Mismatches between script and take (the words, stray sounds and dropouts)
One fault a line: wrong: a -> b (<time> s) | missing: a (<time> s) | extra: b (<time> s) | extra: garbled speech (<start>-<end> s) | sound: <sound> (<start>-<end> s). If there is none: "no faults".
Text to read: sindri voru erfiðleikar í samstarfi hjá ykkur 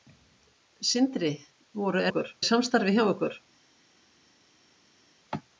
wrong: erfiðleikar -> ykkur (2.1 s)